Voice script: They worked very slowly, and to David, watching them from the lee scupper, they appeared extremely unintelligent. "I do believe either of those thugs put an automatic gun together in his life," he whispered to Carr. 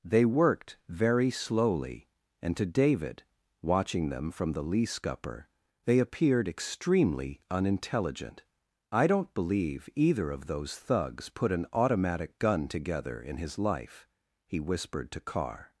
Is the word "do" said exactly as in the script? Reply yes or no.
no